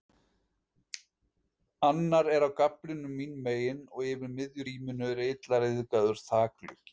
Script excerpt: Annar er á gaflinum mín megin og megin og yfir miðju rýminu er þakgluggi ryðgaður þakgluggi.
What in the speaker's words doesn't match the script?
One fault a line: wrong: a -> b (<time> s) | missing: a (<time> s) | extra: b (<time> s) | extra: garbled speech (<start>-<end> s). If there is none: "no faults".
missing: megin og (4.1 s)
wrong: þakgluggi -> illa (5.3 s)